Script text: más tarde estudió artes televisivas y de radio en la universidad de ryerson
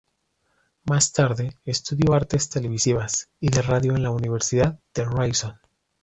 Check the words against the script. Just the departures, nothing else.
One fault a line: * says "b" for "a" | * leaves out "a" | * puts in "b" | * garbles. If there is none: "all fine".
all fine